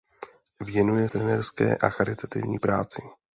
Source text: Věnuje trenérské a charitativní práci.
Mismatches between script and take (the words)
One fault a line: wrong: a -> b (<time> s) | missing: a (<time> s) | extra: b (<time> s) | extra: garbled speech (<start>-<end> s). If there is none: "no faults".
no faults